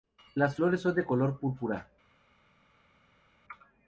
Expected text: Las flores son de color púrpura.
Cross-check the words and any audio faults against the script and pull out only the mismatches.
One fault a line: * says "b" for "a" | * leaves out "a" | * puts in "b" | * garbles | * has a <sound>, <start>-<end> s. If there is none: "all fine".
all fine